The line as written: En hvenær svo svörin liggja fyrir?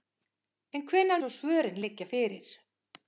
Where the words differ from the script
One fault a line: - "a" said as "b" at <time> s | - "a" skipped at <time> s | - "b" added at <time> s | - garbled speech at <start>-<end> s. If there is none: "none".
none